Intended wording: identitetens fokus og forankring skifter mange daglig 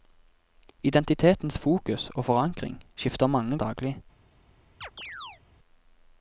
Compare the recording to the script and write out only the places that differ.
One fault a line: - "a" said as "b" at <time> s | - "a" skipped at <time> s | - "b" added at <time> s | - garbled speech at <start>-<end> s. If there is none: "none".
none